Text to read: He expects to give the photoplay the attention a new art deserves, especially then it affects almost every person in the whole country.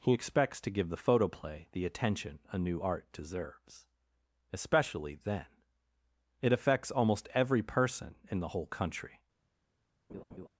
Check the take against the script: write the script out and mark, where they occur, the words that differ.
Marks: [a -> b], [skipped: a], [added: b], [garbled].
He expects to give the photoplay the attention a new art deserves, especially then it affects almost every person in the whole country.